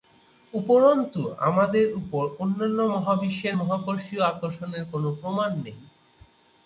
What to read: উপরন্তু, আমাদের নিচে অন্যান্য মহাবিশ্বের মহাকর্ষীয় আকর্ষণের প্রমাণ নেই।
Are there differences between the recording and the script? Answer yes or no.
yes